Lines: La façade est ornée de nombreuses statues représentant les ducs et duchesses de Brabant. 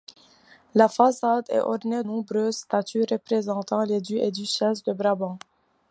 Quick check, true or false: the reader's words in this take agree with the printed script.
false